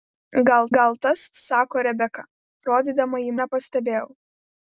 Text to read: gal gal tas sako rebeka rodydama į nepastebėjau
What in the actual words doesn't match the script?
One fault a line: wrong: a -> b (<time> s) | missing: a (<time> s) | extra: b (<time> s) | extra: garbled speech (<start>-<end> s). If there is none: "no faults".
no faults